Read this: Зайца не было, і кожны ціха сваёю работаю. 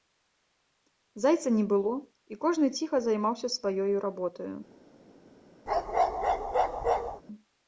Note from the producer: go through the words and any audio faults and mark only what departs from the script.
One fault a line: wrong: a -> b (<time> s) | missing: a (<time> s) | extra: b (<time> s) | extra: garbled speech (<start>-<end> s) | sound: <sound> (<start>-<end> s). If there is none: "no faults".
extra: займаўся (3.1 s)
sound: bark (5.7-7.2 s)